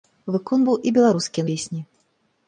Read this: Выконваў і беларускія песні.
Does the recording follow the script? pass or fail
pass